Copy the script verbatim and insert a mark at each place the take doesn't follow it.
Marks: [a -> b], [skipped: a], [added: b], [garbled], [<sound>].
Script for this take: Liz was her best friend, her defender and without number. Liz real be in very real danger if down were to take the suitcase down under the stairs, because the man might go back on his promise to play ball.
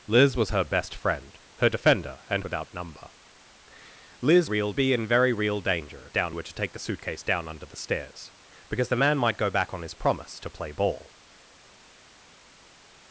Liz was her best friend, her defender and without number. Liz real be in very real danger if down were to take the suitcase down under the stairs, because the man might go back on his promise to play ball.